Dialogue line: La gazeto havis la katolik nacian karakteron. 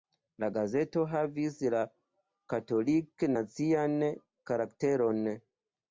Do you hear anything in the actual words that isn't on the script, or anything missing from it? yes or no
no